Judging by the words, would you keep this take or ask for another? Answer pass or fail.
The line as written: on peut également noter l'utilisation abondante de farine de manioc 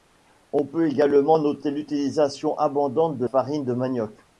pass